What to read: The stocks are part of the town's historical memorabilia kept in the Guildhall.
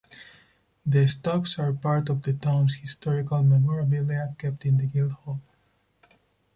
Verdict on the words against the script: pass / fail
pass